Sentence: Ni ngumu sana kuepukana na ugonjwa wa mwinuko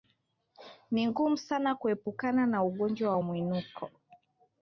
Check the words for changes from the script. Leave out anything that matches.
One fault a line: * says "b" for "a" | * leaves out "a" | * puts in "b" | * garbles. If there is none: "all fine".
all fine